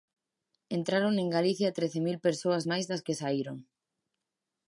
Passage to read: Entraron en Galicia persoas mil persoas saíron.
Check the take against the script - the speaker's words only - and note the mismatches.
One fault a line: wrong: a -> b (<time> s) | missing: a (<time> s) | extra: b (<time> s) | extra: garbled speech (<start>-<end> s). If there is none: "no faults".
wrong: persoas -> trece (1.8 s)
extra: máis das que (2.7 s)